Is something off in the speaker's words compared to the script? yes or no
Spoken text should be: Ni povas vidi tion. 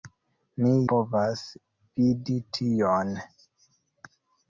no